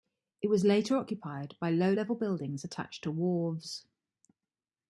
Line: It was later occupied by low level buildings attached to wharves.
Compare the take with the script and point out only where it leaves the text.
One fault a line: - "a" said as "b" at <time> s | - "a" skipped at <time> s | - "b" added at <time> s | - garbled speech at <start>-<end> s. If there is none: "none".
none